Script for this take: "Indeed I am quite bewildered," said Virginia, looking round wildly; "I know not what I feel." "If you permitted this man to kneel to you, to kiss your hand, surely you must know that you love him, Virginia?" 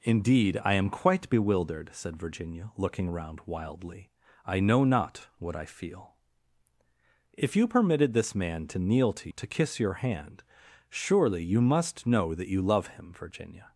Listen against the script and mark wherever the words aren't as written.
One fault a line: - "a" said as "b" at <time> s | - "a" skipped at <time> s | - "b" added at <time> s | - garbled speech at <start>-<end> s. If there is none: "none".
- "you" skipped at 9.3 s